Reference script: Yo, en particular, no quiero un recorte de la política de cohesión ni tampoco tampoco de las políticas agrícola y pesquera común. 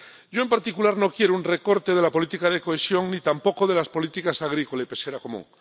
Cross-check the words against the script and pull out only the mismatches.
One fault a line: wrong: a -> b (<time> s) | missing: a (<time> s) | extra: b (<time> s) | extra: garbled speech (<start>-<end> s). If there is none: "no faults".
missing: tampoco (3.7 s)